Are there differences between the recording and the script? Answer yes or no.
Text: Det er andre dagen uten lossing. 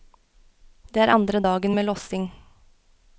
yes